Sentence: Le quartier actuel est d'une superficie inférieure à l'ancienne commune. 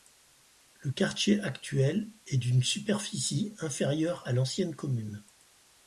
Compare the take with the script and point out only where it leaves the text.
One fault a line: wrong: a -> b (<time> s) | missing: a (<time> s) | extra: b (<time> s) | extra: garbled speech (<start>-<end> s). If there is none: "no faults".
no faults